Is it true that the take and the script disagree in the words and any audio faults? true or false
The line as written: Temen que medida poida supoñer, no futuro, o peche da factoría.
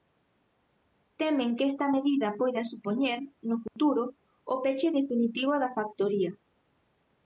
true